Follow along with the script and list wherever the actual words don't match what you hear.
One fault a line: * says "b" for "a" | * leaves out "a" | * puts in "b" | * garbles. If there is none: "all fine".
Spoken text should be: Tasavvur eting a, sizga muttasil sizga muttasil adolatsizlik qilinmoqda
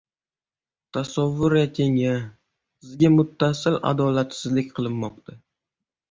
* leaves out "sizga muttasil"